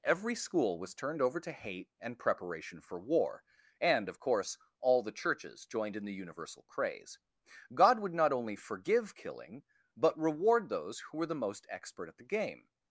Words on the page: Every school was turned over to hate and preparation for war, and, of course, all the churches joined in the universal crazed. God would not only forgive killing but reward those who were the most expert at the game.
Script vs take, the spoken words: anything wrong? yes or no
yes